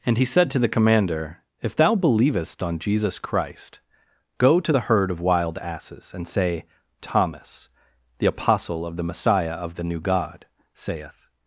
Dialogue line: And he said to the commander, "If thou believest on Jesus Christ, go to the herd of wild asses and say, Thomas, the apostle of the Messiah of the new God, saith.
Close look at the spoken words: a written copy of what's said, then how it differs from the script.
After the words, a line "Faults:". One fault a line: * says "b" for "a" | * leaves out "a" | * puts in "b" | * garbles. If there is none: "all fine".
And he said to the commander, "If thou believest on Jesus Christ, go to the herd of wild asses and say, Thomas, the apostle of the Messiah of the new God, saith.
Faults:
all fine